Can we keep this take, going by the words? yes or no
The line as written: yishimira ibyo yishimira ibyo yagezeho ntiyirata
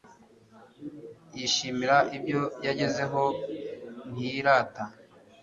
no